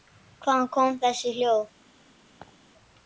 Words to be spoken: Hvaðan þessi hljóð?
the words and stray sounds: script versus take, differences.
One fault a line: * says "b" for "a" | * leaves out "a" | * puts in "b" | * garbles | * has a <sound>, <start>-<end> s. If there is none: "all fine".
* puts in "koma"
* has a laugh, 2.4-2.6 s